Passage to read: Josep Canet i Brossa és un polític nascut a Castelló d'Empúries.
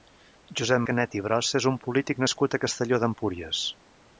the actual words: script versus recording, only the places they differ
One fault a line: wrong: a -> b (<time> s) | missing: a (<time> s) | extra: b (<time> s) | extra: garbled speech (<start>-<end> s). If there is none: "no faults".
no faults